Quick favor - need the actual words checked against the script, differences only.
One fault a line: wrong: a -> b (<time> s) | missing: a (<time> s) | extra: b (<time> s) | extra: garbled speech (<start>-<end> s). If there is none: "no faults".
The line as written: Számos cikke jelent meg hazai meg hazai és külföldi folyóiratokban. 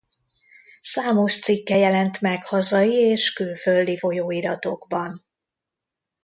missing: meg hazai (2.9 s)